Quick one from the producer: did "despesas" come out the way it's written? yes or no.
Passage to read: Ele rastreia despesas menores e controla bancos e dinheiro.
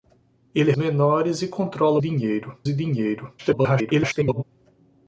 no